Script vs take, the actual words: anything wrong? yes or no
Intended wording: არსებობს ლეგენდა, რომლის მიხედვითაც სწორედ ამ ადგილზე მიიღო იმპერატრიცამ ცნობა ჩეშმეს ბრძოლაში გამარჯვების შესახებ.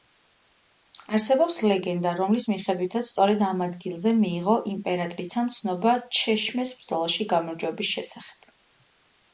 no